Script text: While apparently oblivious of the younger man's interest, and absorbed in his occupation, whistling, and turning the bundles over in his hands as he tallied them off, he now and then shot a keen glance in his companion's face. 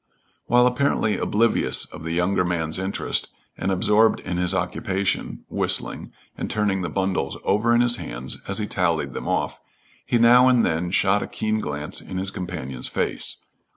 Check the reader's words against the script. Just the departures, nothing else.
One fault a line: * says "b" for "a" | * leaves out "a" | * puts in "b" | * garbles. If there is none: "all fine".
all fine